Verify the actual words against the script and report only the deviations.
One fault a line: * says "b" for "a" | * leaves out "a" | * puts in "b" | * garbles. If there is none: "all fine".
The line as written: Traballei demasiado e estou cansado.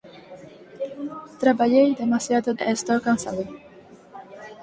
all fine